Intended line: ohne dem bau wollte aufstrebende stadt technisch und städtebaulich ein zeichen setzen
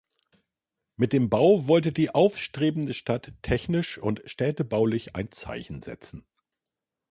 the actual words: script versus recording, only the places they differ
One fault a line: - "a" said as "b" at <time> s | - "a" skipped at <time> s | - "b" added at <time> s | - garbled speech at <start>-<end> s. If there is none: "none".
- "ohne" said as "mit" at 0.9 s
- "die" added at 1.9 s